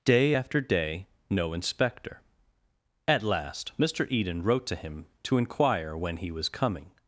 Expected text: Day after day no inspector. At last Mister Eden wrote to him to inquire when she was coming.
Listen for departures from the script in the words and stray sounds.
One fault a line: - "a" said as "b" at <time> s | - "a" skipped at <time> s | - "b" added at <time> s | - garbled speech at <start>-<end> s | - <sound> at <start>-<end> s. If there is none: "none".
- "she" said as "he" at 6.2 s